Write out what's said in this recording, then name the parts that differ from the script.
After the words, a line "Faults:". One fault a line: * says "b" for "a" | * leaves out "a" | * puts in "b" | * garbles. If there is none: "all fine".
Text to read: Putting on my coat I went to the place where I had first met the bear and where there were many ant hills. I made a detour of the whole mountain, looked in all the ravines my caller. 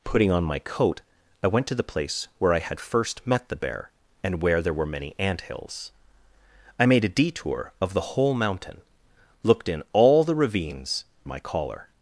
Putting on my coat I went to the place where I had first met the bear and where there were many ant hills. I made a detour of the whole mountain, looked in all the ravines my caller.
Faults:
all fine